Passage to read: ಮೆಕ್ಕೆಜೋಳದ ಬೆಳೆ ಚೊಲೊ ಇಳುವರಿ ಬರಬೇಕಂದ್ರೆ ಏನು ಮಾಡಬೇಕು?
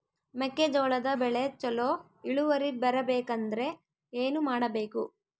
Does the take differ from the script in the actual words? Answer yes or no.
no